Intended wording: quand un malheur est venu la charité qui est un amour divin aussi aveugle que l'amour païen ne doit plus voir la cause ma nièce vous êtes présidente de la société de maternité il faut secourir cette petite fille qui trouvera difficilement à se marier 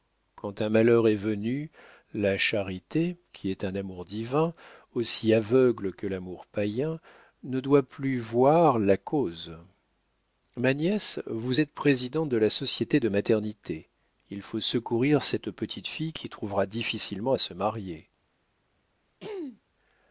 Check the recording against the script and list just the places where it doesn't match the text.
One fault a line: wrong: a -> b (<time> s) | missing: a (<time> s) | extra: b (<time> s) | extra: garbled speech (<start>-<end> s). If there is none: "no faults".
no faults